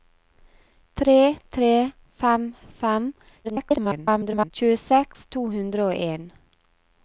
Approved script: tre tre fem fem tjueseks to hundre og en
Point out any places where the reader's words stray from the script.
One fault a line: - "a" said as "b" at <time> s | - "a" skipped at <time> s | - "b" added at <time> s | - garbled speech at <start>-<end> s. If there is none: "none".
- garbled speech at 3.4-4.5 s